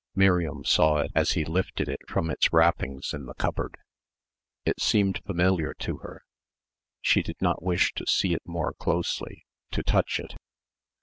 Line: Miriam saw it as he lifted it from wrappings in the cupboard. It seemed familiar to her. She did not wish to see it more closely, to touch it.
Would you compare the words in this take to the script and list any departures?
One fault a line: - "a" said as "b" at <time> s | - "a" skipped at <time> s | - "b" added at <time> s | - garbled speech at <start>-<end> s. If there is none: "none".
- "its" added at 2.3 s